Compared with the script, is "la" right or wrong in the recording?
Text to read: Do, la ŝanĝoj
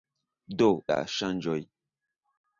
right